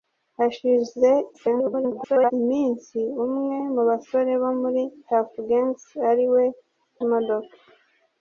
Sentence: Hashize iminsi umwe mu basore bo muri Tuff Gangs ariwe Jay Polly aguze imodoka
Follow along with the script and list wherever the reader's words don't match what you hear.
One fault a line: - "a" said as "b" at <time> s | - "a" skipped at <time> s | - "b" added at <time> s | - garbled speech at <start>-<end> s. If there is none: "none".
- garbled speech at 1.3-2.3 s
- "Jay Polly aguze" skipped at 6.4 s